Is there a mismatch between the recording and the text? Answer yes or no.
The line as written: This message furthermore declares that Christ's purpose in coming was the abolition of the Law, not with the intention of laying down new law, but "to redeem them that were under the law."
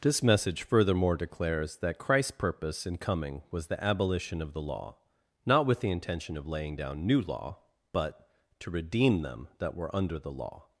no